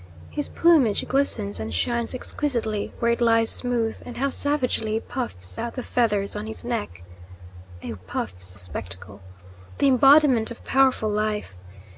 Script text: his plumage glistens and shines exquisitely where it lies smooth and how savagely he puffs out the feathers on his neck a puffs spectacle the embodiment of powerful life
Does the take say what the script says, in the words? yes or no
yes